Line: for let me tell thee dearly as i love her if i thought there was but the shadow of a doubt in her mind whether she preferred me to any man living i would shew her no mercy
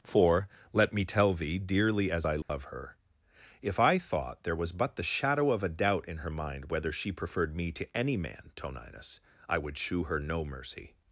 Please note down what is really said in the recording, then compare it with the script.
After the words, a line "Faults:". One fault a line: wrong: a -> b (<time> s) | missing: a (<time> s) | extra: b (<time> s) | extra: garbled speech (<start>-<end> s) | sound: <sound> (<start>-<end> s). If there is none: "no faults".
for let me tell thee dearly as i love her if i thought there was but the shadow of a doubt in her mind whether she preferred me to any man toninus i would shew her no mercy
Faults:
sound: dropout (2.4-2.5 s)
wrong: living -> toninus (8.6 s)